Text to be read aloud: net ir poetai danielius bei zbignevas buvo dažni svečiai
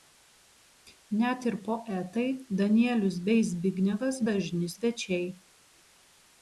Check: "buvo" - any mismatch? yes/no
yes